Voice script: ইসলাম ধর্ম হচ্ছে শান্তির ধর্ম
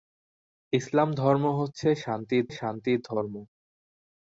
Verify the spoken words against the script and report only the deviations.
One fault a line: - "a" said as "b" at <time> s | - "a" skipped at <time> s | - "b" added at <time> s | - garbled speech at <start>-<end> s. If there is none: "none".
- "শান্তির" added at 2.5 s